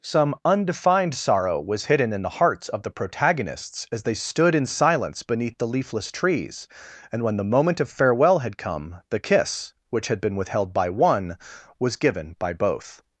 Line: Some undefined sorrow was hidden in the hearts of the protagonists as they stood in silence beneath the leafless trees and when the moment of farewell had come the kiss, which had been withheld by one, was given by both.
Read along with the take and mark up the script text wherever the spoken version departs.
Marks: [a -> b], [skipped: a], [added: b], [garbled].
Some undefined sorrow was hidden in the hearts of the protagonists as they stood in silence beneath the leafless trees and when the moment of farewell had come the kiss, which had been withheld by one, was given by both.